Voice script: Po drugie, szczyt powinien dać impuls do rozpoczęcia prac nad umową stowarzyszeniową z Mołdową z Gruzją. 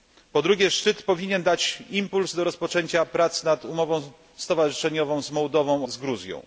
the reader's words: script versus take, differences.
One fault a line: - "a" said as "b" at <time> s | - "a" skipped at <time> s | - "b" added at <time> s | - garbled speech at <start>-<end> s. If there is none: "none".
none